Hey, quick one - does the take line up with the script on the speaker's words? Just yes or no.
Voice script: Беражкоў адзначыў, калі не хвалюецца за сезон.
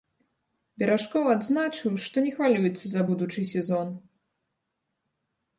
no